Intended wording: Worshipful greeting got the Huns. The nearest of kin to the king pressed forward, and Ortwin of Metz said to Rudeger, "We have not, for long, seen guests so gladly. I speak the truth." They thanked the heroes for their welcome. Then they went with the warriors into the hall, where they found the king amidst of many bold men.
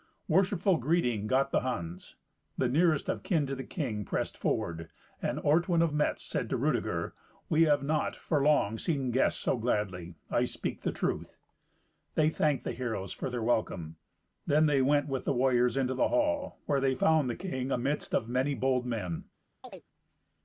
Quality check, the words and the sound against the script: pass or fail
fail